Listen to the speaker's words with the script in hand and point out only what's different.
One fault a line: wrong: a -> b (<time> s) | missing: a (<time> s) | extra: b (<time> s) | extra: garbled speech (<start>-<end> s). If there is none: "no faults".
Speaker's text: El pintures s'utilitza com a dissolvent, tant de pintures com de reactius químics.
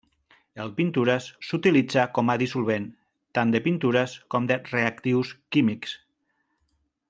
no faults